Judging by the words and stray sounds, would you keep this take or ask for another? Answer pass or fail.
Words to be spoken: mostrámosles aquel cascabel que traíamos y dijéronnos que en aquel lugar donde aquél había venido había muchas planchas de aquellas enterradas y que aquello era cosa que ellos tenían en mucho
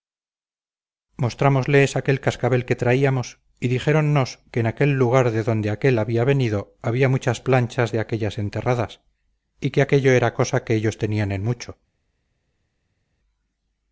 fail